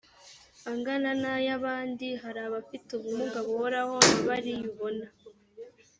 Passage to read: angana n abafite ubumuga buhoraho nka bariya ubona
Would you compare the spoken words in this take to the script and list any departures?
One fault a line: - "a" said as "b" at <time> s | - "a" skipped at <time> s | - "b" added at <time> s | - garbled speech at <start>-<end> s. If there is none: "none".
- "ay abandi hari" added at 1.4 s